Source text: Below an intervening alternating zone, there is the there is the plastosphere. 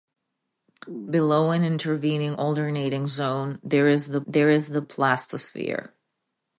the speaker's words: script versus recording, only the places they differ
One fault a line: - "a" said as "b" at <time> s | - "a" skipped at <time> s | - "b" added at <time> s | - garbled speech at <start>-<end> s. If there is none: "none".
none